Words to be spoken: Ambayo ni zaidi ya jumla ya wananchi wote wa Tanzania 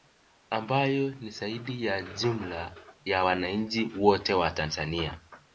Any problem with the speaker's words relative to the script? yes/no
no